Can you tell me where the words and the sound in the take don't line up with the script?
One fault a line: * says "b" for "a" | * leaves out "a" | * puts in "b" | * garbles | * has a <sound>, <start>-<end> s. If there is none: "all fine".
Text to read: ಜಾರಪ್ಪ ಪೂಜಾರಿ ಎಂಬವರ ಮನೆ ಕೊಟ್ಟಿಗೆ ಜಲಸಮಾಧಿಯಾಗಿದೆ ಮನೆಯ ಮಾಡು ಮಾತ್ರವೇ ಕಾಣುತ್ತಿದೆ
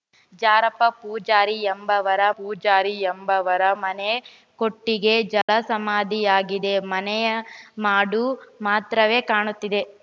* puts in "ಪೂಜಾರಿ ಎಂಬವರ"
* has a dropout, 5.4-5.5 s